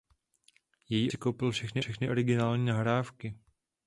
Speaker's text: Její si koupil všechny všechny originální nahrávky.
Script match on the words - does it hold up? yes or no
yes